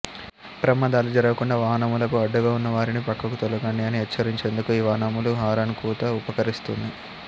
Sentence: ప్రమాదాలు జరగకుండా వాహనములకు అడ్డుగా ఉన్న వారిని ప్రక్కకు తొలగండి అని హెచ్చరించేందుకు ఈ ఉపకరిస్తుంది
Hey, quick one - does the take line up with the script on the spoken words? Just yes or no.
no